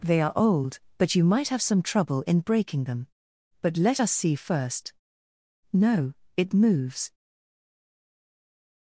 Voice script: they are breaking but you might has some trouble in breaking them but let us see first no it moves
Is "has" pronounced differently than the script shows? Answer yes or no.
yes